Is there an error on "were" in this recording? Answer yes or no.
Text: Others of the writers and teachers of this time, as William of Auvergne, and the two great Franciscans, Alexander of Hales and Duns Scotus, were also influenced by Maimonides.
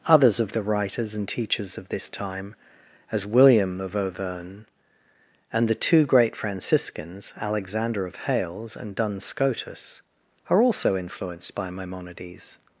yes